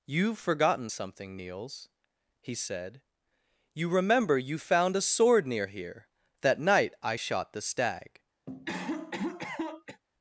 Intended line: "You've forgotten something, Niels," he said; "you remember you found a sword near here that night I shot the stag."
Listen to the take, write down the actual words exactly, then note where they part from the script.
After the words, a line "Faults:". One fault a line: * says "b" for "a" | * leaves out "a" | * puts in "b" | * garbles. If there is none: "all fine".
"You've forgotten something, Niels," he said; "you remember you found a sword near here that night I shot the stag."
Faults:
all fine